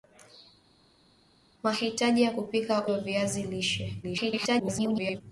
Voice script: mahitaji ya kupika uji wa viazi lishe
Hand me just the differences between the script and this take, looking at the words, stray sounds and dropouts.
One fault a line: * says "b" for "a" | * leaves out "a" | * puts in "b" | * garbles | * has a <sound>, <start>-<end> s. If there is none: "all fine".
* leaves out "uji"
* garbles